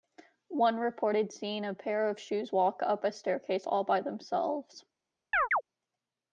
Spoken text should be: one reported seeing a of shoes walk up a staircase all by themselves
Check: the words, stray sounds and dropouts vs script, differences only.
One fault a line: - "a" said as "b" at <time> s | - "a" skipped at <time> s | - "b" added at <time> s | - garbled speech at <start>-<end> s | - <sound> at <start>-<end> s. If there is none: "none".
- "pair" added at 1.8 s
- chirp at 5.3-5.6 s